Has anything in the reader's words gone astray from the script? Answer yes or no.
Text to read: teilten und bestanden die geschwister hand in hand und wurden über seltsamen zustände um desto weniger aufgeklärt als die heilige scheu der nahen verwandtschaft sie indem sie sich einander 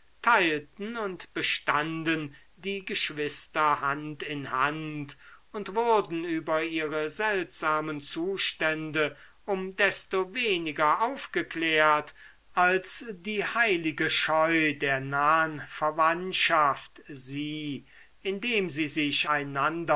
yes